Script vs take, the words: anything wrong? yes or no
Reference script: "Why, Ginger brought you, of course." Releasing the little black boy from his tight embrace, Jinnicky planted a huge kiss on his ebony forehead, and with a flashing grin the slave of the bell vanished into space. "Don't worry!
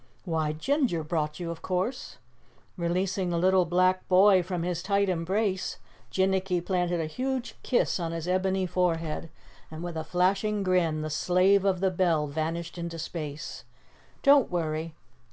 no